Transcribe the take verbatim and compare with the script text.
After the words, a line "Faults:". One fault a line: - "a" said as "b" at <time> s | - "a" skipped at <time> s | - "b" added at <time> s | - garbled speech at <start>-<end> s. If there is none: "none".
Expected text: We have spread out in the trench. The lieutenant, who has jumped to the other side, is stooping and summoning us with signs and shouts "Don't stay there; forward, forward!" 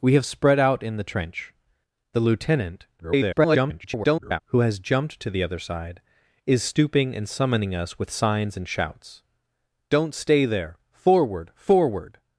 We have spread out in the trench. The lieutenant, [garbled] who has jumped to the other side, is stooping and summoning us with signs and shouts "Don't stay there; forward, forward!"
Faults:
- garbled speech at 3.0-4.4 s